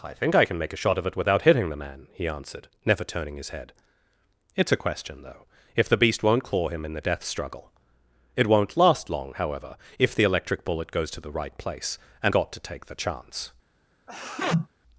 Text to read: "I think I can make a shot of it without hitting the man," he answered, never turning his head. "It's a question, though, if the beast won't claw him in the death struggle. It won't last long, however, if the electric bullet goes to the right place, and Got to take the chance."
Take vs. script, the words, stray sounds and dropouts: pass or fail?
fail